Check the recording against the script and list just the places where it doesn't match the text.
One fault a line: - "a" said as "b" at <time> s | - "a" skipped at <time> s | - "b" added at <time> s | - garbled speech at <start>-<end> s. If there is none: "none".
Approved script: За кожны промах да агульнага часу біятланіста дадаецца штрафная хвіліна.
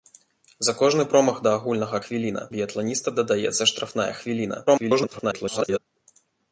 - "часу" said as "хвіліна" at 2.0 s
- garbled speech at 4.7-5.8 s